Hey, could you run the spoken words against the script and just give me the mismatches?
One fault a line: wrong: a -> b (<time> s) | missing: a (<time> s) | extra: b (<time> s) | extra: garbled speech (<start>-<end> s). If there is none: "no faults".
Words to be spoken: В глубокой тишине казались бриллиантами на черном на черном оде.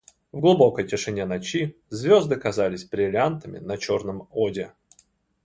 extra: ночи звезды (1.3 s)
missing: на черном (4.3 s)